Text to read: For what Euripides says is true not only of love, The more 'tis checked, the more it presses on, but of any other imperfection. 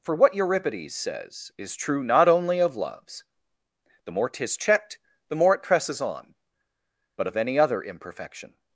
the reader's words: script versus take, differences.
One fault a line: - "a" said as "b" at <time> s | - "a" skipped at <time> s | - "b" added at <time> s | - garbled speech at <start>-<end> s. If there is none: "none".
- "love" said as "loves" at 2.8 s